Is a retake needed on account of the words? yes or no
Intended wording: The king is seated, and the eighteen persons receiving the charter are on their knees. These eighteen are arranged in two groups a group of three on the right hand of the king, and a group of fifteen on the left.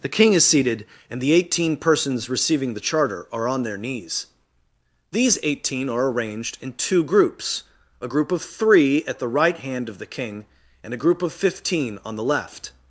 yes